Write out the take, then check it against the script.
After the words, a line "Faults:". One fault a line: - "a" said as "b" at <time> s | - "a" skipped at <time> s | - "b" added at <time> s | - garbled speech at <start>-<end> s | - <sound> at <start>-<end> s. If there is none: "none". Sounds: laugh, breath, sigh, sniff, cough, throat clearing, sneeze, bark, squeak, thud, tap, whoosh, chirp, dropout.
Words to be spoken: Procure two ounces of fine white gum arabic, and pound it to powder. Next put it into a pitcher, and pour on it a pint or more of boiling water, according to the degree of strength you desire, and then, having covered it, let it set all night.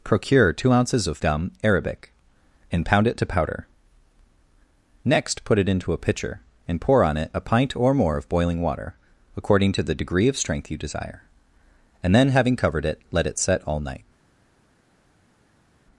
Procure two ounces of gum arabic, and pound it to powder. Next put it into a pitcher, and pour on it a pint or more of boiling water, according to the degree of strength you desire, and then, having covered it, let it set all night.
Faults:
- "fine white" skipped at 1.2 s